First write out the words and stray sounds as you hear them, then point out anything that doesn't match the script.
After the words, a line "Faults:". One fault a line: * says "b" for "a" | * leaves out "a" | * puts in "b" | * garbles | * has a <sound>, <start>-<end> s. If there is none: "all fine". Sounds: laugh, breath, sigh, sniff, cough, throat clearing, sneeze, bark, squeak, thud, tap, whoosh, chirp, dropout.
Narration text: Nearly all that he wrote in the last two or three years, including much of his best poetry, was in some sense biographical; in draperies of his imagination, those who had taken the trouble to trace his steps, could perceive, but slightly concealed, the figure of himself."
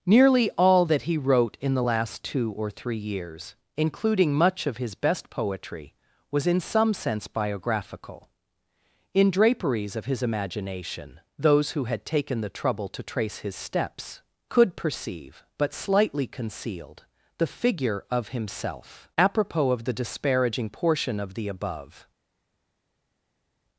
Nearly all that he wrote in the last two or three years, including much of his best poetry, was in some sense biographical; in draperies of his imagination, those who had taken the trouble to trace his steps, could perceive, but slightly concealed, the figure of himself." Apropos of the disparaging portion of the above
Faults:
* puts in "Apropos of the disparaging portion of the above"